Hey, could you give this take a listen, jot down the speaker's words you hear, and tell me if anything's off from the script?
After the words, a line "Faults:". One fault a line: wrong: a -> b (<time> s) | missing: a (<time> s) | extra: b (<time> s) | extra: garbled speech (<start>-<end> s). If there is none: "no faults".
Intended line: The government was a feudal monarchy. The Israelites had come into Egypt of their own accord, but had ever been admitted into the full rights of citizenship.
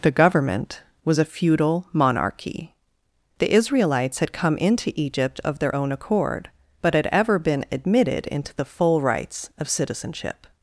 The government was a feudal monarchy. The Israelites had come into Egypt of their own accord, but had ever been admitted into the full rights of citizenship.
Faults:
no faults